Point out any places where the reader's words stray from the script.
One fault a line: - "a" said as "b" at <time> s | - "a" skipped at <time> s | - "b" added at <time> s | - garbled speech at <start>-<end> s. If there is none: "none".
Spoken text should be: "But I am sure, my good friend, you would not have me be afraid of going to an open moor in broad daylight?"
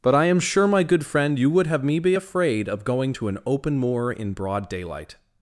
- "not" skipped at 1.7 s